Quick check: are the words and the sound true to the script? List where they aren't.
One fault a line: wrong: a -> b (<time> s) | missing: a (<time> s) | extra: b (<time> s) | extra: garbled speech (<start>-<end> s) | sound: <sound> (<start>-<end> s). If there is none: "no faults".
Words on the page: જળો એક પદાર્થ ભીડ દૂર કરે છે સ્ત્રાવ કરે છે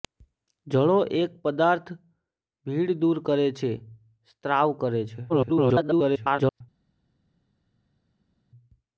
extra: garbled speech (5.3-6.6 s)